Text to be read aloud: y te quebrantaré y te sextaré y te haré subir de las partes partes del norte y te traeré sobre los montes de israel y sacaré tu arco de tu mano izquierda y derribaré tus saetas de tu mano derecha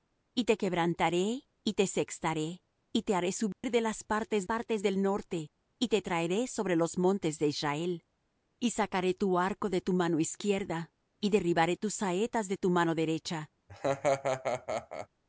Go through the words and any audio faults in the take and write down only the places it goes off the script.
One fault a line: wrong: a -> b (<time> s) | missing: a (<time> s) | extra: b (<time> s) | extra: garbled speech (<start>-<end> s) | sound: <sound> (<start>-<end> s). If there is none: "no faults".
sound: dropout (3.5-3.6 s)
sound: laugh (13.7-15.1 s)